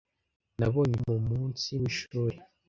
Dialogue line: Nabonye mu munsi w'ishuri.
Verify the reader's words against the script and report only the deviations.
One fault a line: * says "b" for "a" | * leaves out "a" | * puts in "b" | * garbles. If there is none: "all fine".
all fine